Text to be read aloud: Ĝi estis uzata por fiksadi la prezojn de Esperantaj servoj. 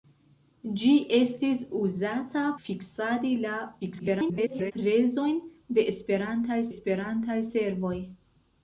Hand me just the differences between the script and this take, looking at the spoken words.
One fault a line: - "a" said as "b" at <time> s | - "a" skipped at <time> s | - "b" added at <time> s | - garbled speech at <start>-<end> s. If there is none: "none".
- "por" skipped at 2.5 s
- garbled speech at 3.8-4.7 s
- "Esperantaj" added at 6.7 s